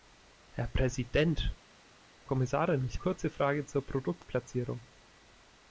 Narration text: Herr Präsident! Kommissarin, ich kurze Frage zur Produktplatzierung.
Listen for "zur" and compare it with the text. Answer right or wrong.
right